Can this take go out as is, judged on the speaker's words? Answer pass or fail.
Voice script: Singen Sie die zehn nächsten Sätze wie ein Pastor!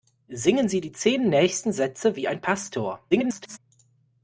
fail